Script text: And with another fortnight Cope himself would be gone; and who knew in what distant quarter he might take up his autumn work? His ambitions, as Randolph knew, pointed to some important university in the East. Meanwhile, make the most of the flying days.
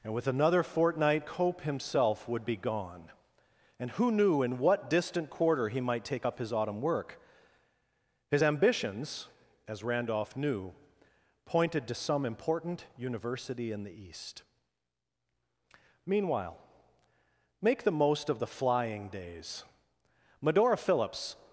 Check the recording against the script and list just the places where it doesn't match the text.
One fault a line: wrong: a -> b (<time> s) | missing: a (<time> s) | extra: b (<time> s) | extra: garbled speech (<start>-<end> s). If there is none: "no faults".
extra: Medora Phillips (20.4 s)